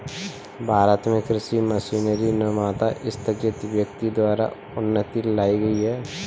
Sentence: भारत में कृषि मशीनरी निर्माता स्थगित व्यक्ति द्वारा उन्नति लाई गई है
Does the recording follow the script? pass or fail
pass